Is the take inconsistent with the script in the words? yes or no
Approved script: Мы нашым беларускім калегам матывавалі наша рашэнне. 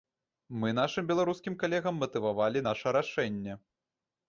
no